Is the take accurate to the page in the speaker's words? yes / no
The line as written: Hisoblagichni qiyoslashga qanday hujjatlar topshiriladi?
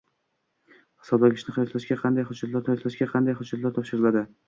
no